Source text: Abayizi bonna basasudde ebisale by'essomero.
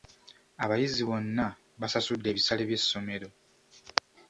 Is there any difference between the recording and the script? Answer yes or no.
no